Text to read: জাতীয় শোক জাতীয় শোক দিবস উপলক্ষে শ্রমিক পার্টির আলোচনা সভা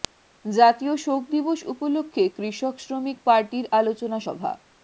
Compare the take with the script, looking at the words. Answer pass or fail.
fail